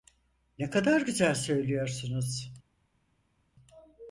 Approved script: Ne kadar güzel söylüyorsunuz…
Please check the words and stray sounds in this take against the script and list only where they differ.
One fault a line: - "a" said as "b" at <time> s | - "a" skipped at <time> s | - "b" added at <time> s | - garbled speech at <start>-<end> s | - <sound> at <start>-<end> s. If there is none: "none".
none